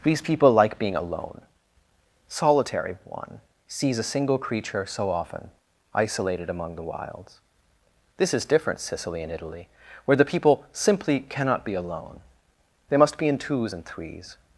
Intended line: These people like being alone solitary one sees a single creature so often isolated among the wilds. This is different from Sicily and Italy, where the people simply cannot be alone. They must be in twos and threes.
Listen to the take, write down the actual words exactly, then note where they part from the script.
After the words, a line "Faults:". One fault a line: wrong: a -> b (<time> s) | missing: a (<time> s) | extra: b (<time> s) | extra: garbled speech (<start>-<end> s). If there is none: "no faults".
These people like being alone solitary one sees a single creature so often isolated among the wilds. This is different Sicily and Italy, where the people simply cannot be alone. They must be in twos and threes.
Faults:
missing: from (8.8 s)